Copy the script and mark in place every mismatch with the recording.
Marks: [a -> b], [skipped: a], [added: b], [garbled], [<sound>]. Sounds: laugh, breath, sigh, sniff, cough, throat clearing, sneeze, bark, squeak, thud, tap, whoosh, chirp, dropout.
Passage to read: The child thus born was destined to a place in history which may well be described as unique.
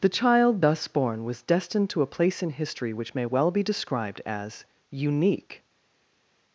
The child thus born was destined to a place in history which may well be described as unique.